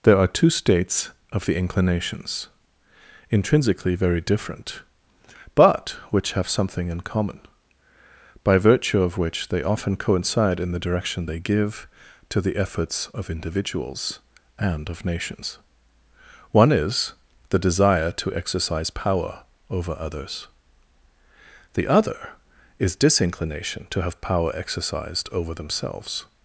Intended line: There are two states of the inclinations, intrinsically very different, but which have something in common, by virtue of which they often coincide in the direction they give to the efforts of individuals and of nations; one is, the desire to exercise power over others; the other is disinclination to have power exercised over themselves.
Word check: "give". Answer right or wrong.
right